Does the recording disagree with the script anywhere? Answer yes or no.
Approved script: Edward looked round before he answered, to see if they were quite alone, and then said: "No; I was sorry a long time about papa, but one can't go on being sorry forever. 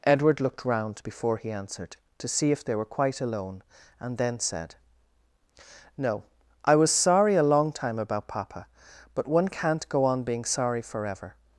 no